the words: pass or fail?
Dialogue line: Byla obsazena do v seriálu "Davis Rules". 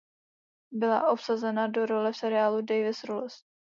fail